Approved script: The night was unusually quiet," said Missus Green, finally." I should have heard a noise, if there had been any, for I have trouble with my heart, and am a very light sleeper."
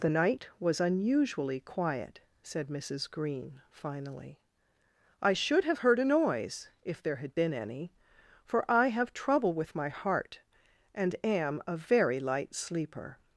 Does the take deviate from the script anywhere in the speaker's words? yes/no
no